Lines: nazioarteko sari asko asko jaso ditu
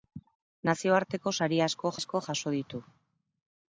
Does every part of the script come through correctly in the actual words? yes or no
yes